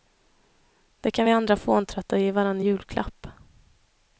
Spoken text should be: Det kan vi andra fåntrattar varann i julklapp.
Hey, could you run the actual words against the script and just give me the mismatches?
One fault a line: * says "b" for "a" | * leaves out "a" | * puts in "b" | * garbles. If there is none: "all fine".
* puts in "ge"